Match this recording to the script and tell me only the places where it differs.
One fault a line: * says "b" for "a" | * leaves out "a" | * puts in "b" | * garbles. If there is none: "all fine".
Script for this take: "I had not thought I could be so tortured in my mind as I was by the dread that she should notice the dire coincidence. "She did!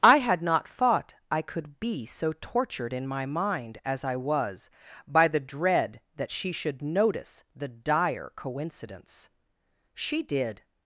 all fine